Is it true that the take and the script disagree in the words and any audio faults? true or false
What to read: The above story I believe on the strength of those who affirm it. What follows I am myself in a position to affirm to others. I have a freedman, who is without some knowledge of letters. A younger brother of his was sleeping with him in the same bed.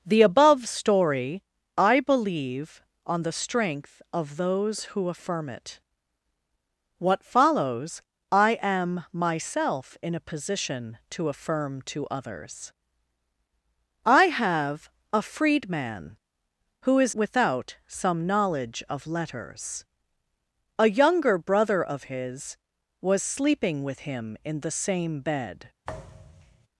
true